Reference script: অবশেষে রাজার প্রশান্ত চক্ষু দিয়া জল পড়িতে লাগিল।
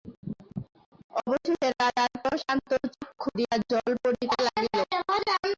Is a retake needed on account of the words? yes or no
no